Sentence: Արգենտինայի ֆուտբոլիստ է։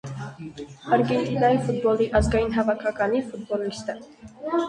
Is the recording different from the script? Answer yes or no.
yes